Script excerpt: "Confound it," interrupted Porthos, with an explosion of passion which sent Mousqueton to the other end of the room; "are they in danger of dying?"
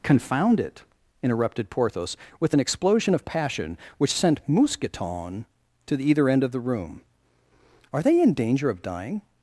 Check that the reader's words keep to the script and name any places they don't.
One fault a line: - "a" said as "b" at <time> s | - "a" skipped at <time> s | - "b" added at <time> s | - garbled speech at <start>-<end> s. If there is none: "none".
- "other" said as "either" at 6.1 s